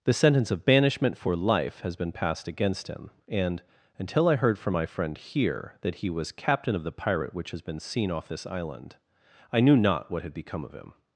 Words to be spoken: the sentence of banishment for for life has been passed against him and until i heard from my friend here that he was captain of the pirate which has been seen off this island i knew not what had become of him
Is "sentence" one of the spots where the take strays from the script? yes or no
no